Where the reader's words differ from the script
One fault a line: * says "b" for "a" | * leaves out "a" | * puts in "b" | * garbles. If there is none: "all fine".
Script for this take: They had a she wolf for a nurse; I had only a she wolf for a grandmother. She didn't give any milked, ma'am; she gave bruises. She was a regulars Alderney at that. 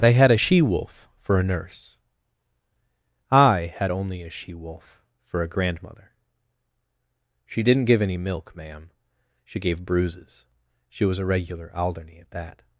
* says "milk" for "milked"
* says "regular" for "regulars"